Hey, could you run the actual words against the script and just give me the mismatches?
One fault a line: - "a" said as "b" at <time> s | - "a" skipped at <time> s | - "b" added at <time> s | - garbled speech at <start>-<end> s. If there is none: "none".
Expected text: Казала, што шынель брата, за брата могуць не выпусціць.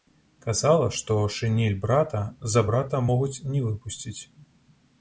none